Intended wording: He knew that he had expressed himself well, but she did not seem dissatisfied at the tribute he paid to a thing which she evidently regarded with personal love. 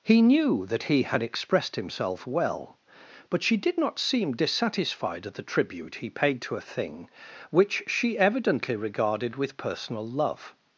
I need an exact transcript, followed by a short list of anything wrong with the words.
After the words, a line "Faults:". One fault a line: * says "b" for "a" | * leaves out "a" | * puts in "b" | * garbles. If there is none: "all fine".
He knew that he had expressed himself well, but she did not seem dissatisfied at the tribute he paid to a thing which she evidently regarded with personal love.
Faults:
all fine